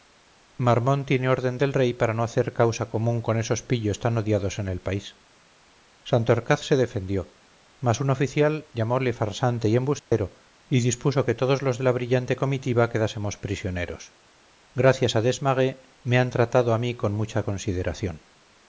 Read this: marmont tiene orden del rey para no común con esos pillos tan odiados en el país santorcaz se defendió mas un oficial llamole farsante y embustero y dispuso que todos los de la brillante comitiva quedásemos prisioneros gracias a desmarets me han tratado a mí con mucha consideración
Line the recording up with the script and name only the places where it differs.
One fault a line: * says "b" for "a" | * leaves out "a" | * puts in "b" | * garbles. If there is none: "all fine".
* puts in "hacer causa"